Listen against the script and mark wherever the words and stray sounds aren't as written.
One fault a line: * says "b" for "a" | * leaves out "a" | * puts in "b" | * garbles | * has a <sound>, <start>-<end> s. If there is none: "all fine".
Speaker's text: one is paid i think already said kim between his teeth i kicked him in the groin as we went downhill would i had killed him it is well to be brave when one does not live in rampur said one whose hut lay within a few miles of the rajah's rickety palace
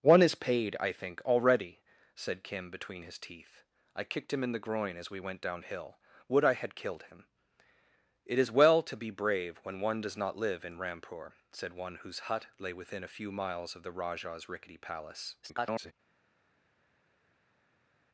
* garbles